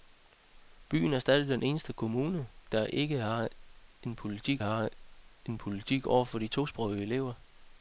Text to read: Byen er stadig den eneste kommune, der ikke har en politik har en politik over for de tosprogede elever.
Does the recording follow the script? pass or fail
pass